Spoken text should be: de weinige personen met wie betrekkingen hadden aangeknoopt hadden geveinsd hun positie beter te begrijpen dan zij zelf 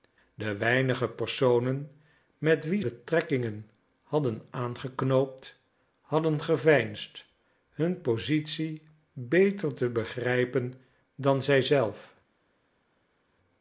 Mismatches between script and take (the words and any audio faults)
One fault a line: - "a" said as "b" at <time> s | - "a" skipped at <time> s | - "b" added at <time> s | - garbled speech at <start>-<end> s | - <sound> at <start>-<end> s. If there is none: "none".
none